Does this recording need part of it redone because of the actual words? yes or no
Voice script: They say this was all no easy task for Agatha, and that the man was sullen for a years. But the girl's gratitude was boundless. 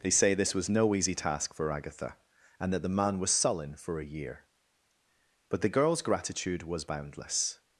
yes